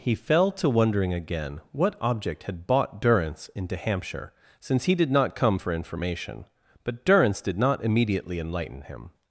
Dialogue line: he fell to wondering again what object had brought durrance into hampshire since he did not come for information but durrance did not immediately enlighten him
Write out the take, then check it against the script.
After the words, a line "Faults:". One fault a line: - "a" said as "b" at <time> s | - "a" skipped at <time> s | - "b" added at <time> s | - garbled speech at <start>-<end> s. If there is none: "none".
he fell to wondering again what object had bought durrance into hampshire since he did not come for information but durrance did not immediately enlighten him
Faults:
- "brought" said as "bought" at 2.6 s